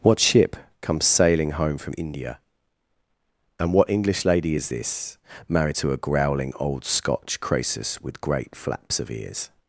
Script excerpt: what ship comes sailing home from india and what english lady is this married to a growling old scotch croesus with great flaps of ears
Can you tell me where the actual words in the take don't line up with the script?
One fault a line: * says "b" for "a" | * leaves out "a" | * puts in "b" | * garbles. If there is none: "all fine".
all fine